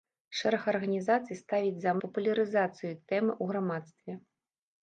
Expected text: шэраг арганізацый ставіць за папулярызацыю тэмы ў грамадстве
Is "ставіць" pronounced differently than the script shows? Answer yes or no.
no